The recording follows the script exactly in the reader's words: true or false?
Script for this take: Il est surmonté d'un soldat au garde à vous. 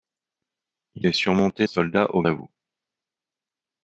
false